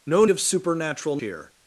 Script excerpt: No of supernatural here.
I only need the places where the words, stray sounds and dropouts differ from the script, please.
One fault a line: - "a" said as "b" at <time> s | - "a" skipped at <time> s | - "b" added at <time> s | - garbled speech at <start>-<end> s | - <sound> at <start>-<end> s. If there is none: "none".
none